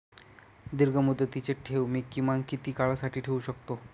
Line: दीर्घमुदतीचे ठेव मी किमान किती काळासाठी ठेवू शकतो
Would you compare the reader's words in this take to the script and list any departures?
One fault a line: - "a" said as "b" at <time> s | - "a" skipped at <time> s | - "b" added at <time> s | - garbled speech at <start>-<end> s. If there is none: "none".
none